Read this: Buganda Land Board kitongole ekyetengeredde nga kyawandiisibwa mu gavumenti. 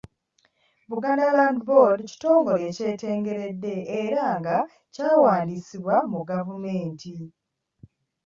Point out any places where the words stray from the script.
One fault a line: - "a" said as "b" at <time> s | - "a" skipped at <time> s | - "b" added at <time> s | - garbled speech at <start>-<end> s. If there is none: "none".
- "era" added at 4.0 s